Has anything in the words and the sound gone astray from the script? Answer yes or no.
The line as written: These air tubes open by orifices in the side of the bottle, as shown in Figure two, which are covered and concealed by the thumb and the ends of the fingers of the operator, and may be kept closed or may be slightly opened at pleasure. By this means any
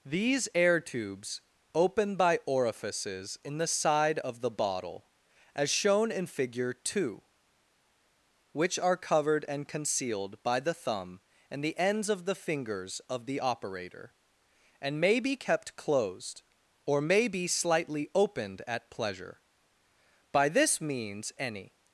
no